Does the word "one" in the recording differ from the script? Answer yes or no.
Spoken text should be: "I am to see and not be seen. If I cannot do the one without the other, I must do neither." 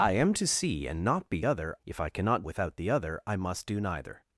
yes